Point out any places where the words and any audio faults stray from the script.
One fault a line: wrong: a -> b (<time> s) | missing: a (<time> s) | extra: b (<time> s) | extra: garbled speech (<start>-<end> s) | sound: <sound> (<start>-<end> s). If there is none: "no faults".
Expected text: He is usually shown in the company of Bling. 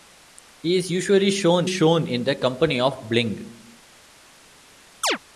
extra: shown (1.6 s)
sound: chirp (5.0-5.2 s)